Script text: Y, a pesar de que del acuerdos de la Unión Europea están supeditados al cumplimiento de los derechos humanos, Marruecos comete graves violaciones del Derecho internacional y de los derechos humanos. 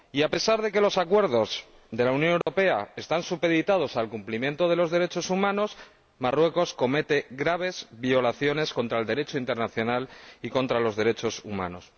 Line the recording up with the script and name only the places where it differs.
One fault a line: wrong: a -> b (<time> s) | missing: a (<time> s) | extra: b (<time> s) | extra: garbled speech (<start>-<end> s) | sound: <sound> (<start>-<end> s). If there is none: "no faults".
wrong: del -> los (0.8 s)
sound: dropout (2.4-2.5 s)